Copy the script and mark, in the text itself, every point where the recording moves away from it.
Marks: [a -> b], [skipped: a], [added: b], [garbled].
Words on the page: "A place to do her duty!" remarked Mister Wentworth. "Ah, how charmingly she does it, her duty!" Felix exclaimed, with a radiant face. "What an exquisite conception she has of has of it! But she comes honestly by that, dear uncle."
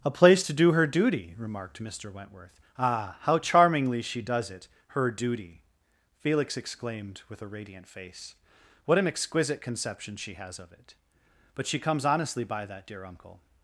"A place to do her duty!" remarked Mister Wentworth. "Ah, how charmingly she does it, her duty!" Felix exclaimed, with a radiant face. "What an exquisite conception she has of [skipped: has of] it! But she comes honestly by that, dear uncle."